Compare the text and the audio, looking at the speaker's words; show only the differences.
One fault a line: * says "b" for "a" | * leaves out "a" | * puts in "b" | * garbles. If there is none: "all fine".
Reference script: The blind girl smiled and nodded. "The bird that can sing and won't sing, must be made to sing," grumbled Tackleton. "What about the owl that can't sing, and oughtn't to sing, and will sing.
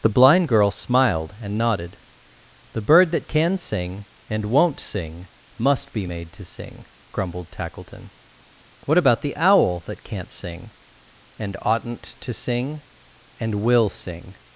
all fine